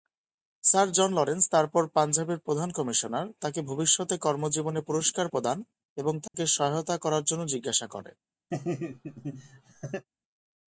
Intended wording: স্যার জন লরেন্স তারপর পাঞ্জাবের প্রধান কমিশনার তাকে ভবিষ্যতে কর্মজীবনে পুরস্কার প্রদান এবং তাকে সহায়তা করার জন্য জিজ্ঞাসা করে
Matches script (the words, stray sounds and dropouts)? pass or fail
fail